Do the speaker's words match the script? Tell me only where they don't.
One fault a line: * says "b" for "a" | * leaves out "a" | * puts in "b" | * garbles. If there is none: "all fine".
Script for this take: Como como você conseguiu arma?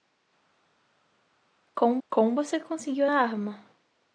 all fine